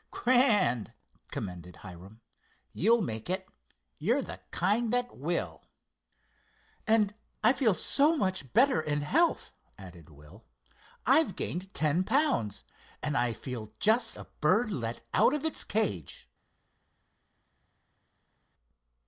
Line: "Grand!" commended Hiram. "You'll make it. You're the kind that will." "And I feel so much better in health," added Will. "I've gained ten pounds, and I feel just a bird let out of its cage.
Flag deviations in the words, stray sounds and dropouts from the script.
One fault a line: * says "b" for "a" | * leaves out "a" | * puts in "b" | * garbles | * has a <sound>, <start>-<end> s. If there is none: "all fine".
all fine